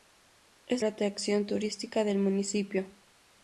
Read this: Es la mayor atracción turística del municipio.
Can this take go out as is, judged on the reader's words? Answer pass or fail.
fail